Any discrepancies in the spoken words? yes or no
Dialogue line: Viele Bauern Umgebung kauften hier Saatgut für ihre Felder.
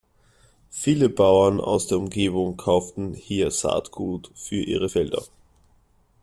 yes